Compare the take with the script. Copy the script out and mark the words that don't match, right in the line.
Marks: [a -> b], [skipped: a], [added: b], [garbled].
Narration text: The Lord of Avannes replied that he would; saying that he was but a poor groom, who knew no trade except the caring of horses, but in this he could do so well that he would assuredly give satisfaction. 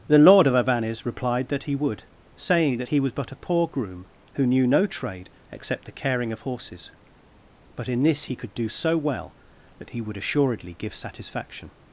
The Lord of Avannes replied that he would; saying that he was but a poor groom, who knew no trade except the caring of horses, but in this he could do so well that he would assuredly give satisfaction.